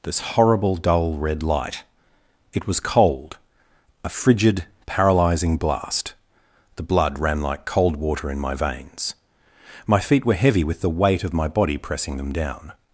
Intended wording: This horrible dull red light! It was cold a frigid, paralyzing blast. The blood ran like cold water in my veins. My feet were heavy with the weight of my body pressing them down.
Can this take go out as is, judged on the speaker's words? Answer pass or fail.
pass